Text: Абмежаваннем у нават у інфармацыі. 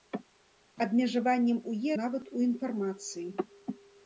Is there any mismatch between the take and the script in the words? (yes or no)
no